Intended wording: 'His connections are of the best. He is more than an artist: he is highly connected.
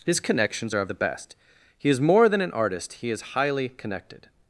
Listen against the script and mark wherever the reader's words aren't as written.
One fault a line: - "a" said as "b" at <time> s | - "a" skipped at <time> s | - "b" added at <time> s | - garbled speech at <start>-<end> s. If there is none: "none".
none